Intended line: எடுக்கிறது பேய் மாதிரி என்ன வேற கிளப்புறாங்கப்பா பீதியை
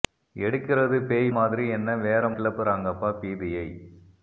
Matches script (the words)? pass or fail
pass